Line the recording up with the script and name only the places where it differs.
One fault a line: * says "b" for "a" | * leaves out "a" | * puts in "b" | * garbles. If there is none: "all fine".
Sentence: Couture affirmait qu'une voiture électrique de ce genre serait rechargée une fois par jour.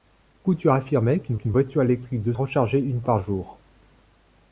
* puts in "qu'une"
* leaves out "ce genre serait"
* leaves out "fois"